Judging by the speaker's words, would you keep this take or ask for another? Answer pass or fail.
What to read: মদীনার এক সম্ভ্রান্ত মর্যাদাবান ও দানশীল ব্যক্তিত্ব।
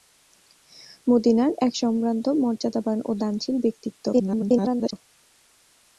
fail